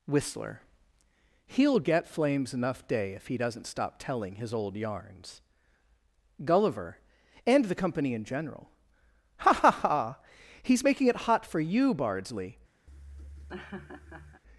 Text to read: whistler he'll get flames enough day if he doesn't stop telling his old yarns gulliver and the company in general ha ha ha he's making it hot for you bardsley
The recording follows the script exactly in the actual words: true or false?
true